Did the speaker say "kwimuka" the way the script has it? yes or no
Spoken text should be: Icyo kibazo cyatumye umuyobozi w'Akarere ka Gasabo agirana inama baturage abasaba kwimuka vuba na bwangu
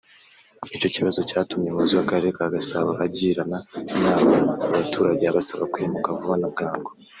yes